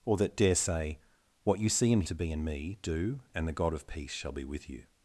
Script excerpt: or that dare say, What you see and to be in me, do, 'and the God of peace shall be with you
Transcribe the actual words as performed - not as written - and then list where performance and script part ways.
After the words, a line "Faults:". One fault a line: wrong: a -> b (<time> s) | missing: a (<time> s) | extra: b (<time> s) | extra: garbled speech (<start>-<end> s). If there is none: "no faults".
or that dare say, What you see and to be in me, do, 'and the God of peace shall be with you
Faults:
no faults